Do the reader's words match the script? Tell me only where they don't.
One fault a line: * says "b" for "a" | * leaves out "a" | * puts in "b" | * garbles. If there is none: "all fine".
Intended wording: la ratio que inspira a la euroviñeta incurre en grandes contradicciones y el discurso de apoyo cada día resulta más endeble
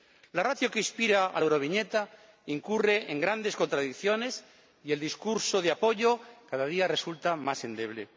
all fine